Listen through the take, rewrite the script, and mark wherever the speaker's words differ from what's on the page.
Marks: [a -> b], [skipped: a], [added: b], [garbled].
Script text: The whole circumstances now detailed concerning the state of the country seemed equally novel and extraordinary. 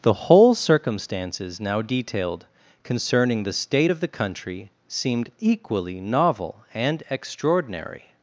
The whole circumstances now detailed concerning the state of the country seemed equally novel and extraordinary.